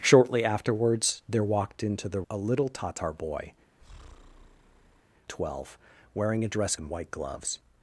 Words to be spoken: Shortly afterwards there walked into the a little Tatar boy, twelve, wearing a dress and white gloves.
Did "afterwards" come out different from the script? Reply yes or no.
no